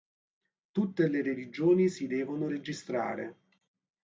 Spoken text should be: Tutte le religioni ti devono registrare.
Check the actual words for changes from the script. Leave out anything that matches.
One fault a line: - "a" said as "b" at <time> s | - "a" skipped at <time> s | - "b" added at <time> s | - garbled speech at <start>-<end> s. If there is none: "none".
- "ti" said as "si" at 1.9 s